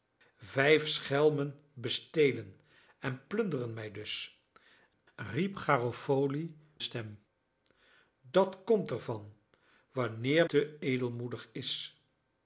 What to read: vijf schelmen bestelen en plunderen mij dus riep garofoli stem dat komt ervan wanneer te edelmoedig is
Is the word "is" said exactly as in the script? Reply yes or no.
yes